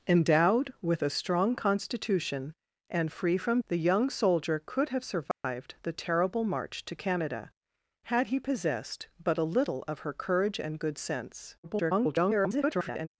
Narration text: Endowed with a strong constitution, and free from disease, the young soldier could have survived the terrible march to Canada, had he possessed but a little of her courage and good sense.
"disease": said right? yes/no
no